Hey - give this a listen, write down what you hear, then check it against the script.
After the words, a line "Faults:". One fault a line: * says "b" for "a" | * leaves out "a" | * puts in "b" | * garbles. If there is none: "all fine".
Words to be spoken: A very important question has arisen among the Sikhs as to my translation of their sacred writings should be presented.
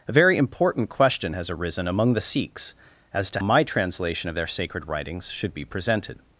A very important question has arisen among the Sikhs as to my translation of their sacred writings should be presented.
Faults:
all fine